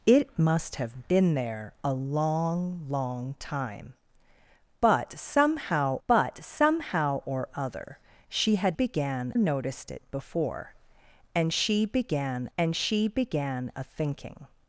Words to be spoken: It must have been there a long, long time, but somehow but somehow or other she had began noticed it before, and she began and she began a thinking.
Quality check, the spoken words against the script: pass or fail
pass